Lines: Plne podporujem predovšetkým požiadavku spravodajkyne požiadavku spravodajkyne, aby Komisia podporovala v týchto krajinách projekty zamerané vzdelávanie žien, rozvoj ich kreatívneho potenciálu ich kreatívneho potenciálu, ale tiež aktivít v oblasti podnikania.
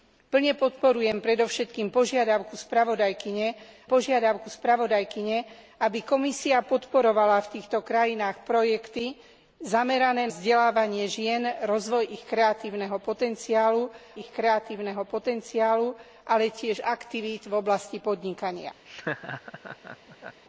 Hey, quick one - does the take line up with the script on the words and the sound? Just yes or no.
no